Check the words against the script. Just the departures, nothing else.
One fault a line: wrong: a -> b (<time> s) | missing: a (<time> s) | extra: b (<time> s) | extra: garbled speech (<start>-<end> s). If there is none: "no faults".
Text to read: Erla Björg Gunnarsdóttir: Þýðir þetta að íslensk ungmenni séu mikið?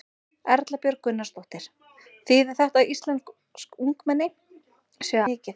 no faults